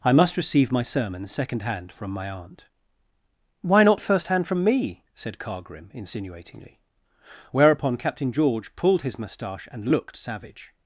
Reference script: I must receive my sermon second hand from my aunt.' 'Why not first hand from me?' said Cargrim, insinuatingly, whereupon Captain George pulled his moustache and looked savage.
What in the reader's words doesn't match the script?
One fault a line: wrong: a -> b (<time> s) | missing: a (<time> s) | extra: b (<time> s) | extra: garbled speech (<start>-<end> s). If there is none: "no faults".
no faults